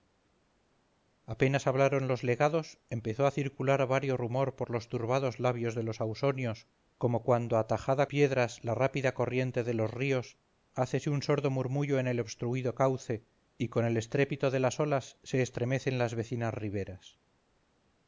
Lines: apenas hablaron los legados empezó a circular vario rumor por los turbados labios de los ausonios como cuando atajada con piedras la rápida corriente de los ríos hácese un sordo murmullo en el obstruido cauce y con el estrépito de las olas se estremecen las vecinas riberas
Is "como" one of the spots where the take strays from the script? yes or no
no